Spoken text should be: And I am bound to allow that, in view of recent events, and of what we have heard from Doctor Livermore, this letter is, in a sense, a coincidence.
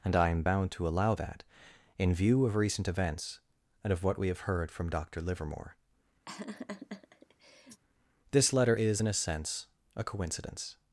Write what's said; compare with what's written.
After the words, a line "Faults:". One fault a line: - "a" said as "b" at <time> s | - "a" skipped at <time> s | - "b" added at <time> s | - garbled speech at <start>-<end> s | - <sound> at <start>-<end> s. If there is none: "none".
And I am bound to allow that, in view of recent events, and of what we have heard from Doctor Livermore, this letter is, in a sense, a coincidence.
Faults:
- laugh at 6.3-7.8 s